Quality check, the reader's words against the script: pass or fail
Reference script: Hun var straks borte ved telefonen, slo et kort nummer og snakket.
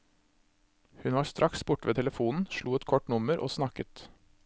pass